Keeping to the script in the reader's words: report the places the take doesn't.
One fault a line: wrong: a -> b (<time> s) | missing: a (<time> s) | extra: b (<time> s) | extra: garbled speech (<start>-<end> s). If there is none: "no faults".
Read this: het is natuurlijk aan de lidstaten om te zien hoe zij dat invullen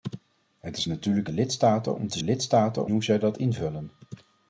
missing: aan (1.3 s)
wrong: zien -> lidstaten (2.2 s)